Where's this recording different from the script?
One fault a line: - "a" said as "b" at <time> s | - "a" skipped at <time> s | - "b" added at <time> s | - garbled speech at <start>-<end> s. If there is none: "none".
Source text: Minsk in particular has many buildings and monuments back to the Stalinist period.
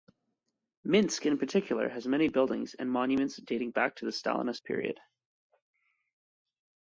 - "dating" added at 3.3 s